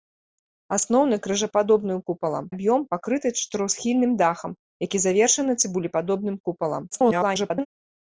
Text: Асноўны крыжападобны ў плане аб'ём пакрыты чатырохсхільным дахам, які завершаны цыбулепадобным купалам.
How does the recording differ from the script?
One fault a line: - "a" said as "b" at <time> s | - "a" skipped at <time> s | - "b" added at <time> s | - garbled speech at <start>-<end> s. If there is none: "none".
- "плане" said as "купалам" at 2.1 s
- garbled speech at 6.9-7.7 s